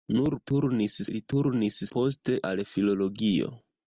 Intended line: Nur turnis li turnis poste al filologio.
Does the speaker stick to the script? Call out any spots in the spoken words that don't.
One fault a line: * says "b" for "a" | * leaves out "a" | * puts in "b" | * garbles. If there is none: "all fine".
all fine